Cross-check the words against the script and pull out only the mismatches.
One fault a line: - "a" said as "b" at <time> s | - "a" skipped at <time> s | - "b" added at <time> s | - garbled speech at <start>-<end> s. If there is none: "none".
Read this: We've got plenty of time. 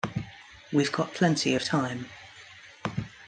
none